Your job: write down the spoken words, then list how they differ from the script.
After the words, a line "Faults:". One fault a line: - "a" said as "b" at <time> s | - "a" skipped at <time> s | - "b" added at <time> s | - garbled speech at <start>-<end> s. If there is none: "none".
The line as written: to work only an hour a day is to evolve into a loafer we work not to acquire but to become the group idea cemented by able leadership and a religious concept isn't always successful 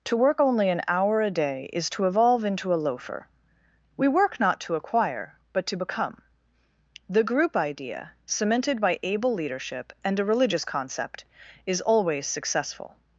to work only an hour a day is to evolve into a loafer we work not to acquire but to become the group idea cemented by able leadership and a religious concept is always successful
Faults:
- "isn't" said as "is" at 11.7 s